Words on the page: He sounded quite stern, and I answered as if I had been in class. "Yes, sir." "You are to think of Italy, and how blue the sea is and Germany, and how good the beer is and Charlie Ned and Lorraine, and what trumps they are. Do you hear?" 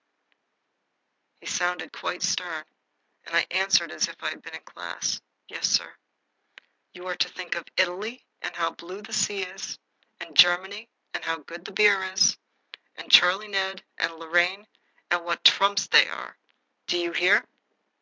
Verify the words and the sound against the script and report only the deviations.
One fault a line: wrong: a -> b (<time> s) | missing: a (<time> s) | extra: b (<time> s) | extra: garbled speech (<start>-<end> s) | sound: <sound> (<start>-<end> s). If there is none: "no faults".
no faults